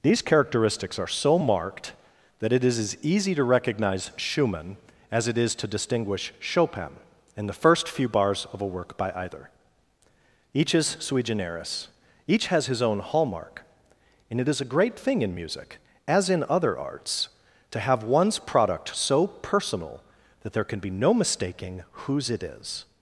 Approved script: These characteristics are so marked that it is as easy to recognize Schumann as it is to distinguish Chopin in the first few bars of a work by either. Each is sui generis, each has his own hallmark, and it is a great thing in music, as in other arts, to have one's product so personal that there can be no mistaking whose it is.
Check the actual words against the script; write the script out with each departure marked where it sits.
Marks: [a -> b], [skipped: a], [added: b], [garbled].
These characteristics are so marked that it is as easy to recognize Schumann as it is to distinguish Chopin in the first few bars of a work by either. Each is sui generis, each has his own hallmark, and it is a great thing in music, as in other arts, to have one's product so personal that there can be no mistaking whose it is.